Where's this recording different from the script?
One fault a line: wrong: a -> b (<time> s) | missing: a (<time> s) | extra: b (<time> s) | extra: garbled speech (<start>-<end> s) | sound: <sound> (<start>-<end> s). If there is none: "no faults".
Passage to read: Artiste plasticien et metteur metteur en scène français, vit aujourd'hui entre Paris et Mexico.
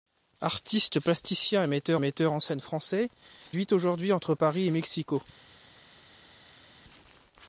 no faults